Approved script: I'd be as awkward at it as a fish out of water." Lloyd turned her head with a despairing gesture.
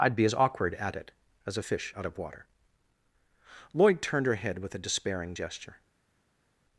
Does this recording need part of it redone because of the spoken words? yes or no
no